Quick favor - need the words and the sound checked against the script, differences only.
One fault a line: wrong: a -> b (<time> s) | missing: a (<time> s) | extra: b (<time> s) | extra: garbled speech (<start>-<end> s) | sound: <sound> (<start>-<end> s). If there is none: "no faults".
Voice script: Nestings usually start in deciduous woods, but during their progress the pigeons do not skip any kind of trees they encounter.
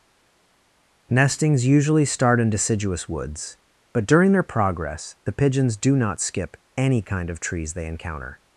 no faults